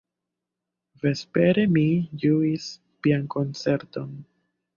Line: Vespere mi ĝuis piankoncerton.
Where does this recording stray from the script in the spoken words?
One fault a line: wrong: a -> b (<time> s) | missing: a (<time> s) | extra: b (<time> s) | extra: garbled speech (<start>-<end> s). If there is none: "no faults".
no faults